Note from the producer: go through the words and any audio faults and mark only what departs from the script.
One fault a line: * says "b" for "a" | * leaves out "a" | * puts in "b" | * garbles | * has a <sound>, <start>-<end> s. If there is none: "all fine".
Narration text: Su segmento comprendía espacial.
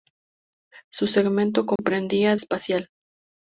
* has a dropout, 1.8-1.8 s